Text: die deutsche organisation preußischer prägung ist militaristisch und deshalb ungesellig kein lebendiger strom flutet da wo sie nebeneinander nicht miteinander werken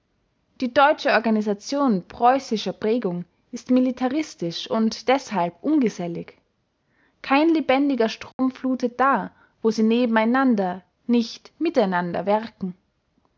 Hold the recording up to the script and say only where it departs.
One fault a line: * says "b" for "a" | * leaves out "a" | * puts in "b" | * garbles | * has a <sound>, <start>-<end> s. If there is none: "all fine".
* has a dropout, 8.3-8.4 s